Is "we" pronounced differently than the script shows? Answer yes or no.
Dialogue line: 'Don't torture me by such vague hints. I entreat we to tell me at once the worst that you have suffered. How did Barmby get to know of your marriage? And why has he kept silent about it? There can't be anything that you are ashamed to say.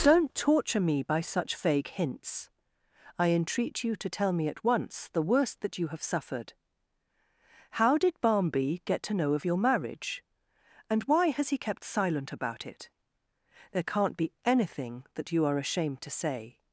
yes